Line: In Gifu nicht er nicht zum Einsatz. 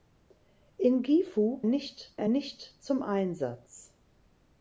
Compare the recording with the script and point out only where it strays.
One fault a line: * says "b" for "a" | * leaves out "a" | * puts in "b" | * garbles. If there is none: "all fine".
all fine